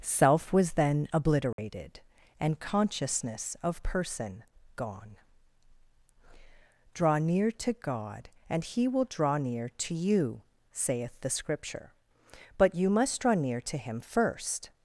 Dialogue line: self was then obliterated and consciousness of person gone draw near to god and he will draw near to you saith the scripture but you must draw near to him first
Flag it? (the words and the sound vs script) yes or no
yes